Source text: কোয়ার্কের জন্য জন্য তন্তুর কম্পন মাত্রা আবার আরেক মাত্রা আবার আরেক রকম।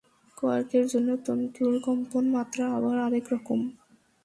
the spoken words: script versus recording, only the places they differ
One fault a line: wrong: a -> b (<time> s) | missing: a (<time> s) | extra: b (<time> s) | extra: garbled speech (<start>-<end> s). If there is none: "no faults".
missing: জন্য (1.1 s)
missing: মাত্রা আবার আরেক (3.2 s)